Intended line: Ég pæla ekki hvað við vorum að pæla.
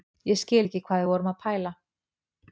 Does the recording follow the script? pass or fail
fail